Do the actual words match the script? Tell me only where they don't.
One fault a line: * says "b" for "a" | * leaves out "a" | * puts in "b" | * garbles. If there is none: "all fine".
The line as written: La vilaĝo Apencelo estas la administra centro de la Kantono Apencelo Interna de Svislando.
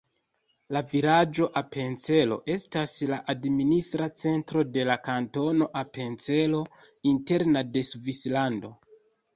all fine